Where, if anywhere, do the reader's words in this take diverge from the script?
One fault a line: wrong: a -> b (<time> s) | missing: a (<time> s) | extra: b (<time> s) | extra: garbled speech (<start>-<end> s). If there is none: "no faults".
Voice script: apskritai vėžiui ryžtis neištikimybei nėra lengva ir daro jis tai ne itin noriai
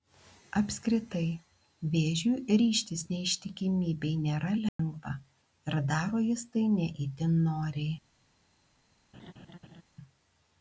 no faults